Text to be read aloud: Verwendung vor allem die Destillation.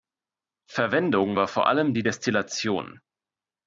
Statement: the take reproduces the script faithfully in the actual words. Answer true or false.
false